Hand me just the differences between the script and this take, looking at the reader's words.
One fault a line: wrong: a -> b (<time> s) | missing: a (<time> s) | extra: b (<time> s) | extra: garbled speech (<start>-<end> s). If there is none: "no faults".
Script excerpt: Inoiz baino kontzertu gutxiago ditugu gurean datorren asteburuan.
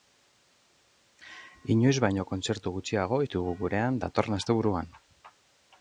no faults